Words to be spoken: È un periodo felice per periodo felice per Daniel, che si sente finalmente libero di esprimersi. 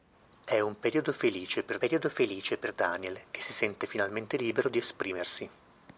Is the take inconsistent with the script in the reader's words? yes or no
no